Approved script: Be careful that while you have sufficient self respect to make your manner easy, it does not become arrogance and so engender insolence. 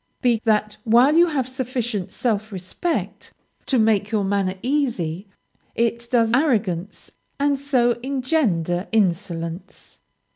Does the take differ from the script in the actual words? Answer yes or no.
yes